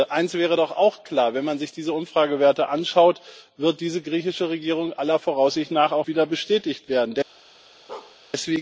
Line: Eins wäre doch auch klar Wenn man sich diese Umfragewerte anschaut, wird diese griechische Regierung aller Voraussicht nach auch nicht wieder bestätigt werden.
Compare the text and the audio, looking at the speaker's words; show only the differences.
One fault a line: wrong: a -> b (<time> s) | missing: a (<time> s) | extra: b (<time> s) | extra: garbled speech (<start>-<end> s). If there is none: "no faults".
missing: nicht (6.1 s)